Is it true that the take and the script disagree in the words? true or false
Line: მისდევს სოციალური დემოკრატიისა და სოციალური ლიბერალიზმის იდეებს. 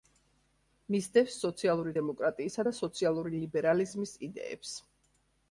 false